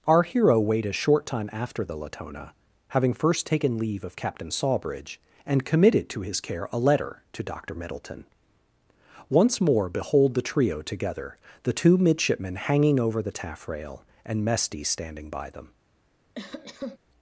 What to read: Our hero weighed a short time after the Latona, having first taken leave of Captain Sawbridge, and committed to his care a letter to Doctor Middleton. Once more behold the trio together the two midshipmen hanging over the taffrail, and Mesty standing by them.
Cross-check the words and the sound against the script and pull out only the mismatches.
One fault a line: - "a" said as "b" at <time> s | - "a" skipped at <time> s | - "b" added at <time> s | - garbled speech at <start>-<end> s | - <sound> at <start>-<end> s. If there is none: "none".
- cough at 16.3-17.0 s